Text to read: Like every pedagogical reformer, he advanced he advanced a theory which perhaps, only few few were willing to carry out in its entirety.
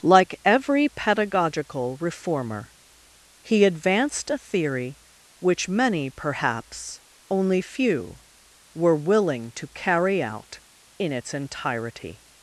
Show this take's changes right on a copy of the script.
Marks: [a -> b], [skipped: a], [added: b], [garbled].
Like every pedagogical reformer, he advanced [skipped: he advanced] a theory which [added: many] perhaps, only few [skipped: few] were willing to carry out in its entirety.